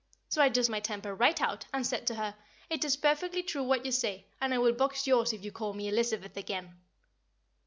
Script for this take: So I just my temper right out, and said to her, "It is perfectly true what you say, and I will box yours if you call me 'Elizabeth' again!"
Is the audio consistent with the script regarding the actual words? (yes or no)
yes